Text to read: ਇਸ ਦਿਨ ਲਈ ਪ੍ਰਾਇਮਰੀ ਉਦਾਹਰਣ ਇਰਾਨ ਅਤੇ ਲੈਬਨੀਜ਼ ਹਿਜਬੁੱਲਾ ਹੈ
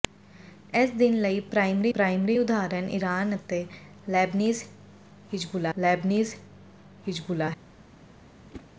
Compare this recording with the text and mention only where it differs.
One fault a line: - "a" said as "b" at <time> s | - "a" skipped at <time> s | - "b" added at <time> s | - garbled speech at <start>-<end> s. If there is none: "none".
- "ਪ੍ਰਾਇਮਰੀ" added at 1.9 s
- "ਲੈਬਨੀਜ਼ ਹਿਜਬੁੱਲਾ" added at 5.8 s